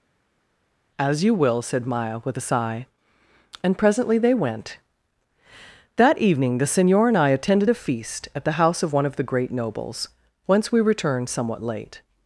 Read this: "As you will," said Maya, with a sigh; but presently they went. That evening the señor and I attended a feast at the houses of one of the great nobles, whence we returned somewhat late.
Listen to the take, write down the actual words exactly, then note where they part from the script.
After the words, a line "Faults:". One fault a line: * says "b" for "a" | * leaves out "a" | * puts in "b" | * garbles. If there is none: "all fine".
"As you will," said Maya, with a sigh; and presently they went. That evening the señor and I attended a feast at the house of one of the great nobles, whence we returned somewhat late.
Faults:
* says "and" for "but"
* says "house" for "houses"